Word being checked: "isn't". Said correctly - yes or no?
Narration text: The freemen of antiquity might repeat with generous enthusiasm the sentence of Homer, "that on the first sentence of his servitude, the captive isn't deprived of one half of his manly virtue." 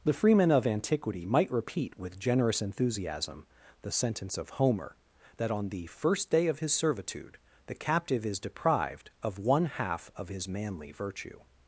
no